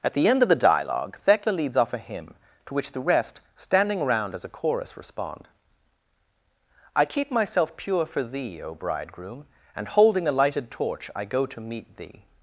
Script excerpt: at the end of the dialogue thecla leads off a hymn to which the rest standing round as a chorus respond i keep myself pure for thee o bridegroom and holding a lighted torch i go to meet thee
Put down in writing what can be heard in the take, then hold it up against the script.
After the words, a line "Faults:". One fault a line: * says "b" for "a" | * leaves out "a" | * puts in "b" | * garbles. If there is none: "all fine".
at the end of the dialogue thecla leads off a hymn to which the rest standing around as a chorus respond i keep myself pure for thee o bridegroom and holding a lighted torch i go to meet thee
Faults:
* says "around" for "round"